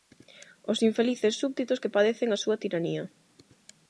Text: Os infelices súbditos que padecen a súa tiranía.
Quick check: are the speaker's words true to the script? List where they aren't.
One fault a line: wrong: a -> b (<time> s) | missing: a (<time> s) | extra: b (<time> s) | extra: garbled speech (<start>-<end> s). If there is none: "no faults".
no faults